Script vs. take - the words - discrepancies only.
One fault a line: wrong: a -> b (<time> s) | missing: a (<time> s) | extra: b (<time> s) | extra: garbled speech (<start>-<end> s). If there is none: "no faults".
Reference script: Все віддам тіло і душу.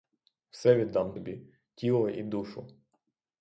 extra: тобі (1.1 s)